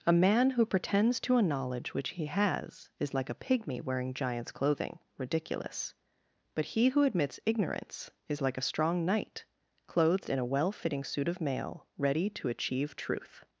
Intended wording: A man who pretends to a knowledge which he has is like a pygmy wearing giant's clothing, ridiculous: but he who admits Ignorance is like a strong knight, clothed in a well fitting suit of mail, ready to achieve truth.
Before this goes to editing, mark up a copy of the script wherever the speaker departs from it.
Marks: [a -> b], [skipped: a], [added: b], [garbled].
A man who pretends to a knowledge which he has is like a pygmy wearing giant's clothing, ridiculous: but he who admits Ignorance is like a strong knight, clothed in a well fitting suit of mail, ready to achieve truth.